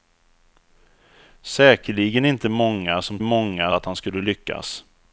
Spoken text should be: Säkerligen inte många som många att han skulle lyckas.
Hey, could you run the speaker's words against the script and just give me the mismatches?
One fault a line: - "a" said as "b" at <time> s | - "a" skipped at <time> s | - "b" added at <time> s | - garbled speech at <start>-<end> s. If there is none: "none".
none